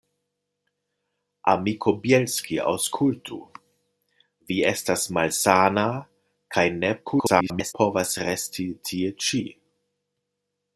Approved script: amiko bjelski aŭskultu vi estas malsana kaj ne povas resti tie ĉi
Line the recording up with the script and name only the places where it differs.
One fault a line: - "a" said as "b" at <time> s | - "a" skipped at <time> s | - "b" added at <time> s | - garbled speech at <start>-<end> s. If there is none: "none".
- garbled speech at 7.1-7.7 s